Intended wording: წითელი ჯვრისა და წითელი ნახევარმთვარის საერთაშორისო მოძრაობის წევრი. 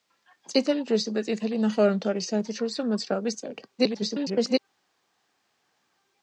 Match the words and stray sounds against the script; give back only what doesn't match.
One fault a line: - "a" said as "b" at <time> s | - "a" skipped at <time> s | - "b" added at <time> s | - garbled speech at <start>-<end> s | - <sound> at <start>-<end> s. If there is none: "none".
- garbled speech at 3.8-4.6 s